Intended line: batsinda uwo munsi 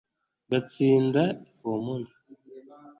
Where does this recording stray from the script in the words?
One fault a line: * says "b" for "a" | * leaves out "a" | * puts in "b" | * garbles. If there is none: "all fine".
all fine